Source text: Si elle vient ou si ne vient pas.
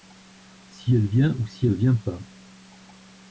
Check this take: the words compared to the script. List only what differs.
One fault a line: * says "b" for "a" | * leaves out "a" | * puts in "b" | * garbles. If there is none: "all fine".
all fine